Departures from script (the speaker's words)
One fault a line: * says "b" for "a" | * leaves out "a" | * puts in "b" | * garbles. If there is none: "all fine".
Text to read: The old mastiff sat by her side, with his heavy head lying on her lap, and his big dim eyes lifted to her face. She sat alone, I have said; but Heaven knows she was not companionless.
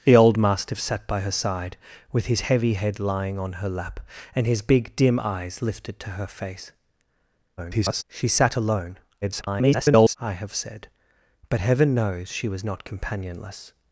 * garbles
* garbles